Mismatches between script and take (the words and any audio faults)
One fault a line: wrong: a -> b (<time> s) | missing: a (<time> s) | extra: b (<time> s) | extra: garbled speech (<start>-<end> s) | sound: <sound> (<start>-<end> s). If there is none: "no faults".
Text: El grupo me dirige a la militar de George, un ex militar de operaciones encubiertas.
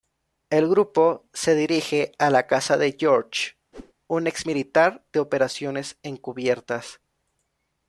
wrong: me -> se (1.3 s)
wrong: militar -> casa (2.5 s)
sound: whoosh (3.7-3.9 s)